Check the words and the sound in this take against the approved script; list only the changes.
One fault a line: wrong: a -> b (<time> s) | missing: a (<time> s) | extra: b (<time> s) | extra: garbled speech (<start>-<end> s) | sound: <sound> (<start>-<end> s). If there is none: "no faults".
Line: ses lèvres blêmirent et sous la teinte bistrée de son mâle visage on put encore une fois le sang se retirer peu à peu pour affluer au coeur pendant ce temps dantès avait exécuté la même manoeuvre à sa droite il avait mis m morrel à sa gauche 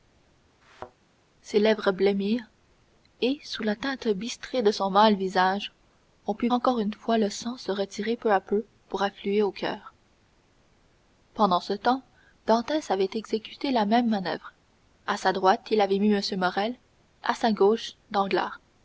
sound: thud (0.6-0.9 s)